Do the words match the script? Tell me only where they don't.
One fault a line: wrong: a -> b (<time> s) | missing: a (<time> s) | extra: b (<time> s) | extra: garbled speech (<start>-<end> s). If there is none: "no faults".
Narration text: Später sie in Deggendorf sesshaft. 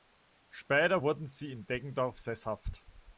extra: wurden (1.0 s)